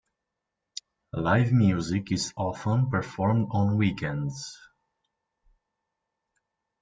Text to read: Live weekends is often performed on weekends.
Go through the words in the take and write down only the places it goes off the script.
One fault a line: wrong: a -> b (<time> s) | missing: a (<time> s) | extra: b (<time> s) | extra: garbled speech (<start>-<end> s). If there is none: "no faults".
wrong: weekends -> music (1.5 s)